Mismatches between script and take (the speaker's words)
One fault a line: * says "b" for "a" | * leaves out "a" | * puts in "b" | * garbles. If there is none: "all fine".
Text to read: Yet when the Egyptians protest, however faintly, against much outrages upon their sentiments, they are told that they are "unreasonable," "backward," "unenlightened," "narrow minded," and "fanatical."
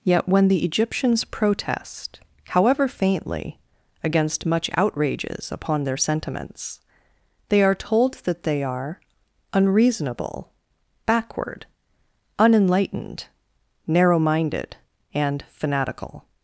all fine